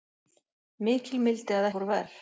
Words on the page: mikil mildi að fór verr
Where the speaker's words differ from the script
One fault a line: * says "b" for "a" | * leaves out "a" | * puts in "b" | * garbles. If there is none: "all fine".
all fine